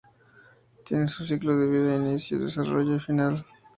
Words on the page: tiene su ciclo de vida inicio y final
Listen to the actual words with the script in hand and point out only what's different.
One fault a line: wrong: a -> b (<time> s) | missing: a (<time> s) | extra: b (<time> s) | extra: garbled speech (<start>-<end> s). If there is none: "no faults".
extra: desarrollo (2.4 s)